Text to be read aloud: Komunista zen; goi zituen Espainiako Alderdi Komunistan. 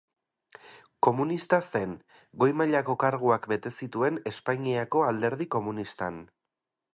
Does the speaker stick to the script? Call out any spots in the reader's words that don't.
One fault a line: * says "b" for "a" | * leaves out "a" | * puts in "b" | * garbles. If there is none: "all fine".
* puts in "mailako karguak bete"